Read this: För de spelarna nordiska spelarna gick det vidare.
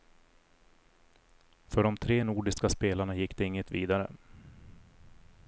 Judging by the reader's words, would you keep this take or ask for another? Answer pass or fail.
fail